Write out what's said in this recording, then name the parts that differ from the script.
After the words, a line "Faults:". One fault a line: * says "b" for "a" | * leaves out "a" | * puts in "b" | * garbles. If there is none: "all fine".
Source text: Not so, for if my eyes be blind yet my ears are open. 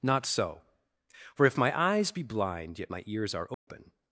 Not so, for if my eyes be blind yet my ears are open.
Faults:
all fine